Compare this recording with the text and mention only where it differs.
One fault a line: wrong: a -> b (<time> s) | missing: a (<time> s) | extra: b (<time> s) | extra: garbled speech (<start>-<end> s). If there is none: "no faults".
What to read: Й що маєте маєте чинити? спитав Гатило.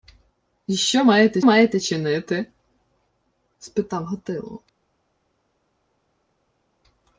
no faults